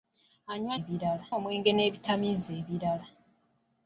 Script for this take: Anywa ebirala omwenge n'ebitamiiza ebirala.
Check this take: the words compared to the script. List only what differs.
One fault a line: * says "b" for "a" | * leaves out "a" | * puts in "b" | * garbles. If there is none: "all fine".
all fine